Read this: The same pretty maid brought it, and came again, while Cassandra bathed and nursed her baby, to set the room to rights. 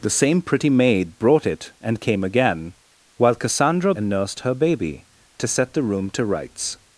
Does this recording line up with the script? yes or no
no